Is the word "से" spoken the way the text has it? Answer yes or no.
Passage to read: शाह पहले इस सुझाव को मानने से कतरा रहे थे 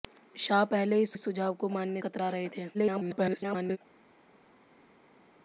no